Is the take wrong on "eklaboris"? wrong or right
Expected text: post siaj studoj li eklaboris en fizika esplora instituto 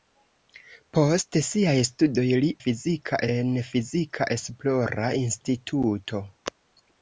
wrong